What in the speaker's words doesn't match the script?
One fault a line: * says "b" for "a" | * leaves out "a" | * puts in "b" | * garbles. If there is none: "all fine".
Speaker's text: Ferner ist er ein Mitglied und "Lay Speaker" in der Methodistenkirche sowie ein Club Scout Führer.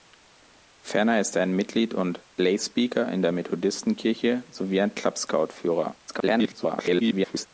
* garbles